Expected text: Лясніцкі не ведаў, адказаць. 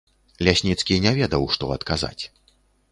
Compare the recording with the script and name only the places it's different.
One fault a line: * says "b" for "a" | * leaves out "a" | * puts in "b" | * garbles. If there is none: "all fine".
* puts in "што"